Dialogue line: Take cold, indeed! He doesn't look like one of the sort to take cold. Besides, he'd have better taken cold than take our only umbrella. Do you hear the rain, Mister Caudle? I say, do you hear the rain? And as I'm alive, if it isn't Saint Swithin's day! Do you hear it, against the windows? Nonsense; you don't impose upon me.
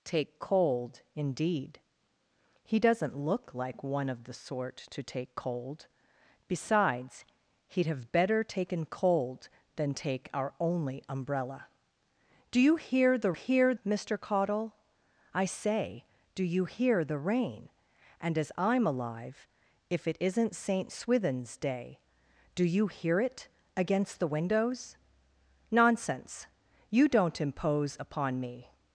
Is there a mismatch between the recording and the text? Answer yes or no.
yes